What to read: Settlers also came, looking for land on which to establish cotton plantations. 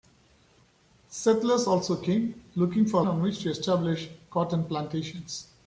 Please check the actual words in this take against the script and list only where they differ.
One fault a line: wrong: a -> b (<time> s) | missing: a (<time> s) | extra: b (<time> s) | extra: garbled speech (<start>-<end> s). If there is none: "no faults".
missing: land (3.0 s)